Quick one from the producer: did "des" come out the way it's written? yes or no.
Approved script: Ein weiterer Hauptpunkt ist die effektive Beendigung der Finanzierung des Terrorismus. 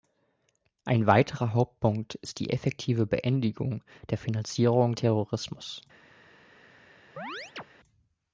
no